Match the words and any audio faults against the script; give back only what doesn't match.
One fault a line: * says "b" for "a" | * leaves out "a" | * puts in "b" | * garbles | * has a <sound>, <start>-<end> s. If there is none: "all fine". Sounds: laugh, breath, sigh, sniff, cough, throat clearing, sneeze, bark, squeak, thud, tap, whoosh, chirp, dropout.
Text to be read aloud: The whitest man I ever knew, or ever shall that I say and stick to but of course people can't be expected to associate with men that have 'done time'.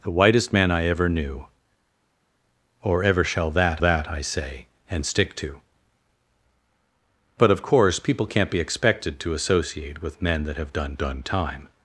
* puts in "that"
* puts in "done"